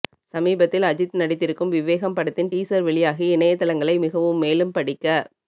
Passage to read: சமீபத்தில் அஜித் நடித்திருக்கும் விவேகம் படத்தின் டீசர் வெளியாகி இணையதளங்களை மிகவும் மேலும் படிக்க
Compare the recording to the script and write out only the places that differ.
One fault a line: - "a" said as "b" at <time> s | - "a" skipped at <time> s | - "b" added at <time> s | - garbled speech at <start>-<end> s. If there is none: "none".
none